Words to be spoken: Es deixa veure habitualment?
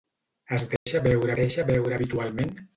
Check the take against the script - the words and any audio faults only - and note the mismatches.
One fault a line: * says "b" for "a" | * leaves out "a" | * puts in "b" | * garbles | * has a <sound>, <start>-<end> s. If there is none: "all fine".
* has a dropout, 0.8-0.9 s
* puts in "deixa veure"